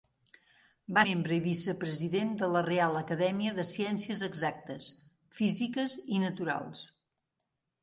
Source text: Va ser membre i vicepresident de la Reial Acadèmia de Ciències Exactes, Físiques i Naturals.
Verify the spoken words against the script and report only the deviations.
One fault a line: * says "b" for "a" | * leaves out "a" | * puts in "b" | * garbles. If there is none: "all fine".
* leaves out "ser"